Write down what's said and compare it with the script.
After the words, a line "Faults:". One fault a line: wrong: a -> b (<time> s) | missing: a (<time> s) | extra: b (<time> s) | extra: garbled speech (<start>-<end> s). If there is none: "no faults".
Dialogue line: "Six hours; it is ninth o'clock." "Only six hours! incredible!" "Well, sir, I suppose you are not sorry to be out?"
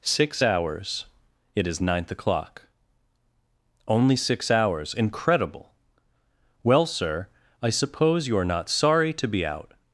"Six hours; it is ninth o'clock." "Only six hours! incredible!" "Well, sir, I suppose you are not sorry to be out?"
Faults:
no faults